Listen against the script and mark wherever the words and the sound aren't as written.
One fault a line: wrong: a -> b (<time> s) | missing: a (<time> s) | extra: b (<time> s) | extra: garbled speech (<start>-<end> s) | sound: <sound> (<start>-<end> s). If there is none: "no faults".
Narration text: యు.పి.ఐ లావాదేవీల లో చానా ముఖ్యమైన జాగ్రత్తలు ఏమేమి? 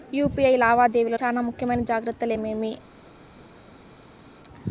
missing: లో (1.2 s)